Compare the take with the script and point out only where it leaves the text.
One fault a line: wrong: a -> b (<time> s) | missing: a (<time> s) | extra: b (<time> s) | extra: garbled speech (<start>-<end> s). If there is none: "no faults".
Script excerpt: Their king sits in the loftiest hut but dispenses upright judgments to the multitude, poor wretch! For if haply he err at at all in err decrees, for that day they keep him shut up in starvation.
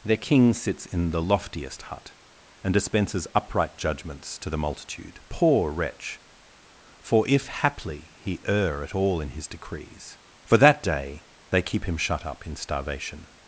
wrong: but -> and (2.6 s)
missing: at (8.9 s)
wrong: err -> his (9.3 s)